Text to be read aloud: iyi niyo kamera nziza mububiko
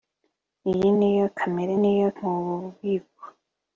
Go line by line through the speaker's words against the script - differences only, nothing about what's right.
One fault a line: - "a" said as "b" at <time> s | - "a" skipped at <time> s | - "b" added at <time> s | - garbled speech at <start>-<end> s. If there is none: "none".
- "nziza" said as "niyo" at 1.8 s